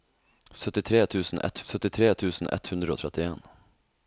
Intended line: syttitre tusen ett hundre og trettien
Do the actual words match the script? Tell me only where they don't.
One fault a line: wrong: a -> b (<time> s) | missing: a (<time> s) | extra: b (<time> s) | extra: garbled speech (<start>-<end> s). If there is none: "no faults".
extra: syttitre tusen ett (1.7 s)